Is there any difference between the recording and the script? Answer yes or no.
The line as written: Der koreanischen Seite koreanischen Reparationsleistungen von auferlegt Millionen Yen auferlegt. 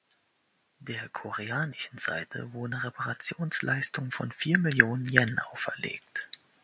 yes